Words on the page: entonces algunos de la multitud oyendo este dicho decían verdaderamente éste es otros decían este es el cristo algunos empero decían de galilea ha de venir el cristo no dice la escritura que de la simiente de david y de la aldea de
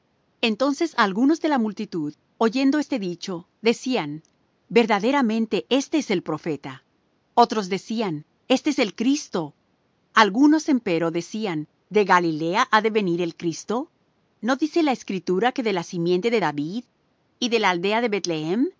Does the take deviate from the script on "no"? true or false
false